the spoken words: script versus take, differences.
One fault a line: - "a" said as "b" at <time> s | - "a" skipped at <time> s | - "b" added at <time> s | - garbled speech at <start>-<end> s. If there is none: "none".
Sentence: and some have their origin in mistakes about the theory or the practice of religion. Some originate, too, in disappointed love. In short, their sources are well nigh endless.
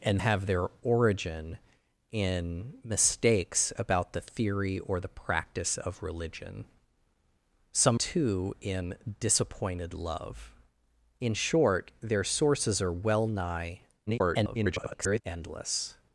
- "some" skipped at 0.2 s
- "originate" skipped at 8.0 s
- garbled speech at 14.1-15.2 s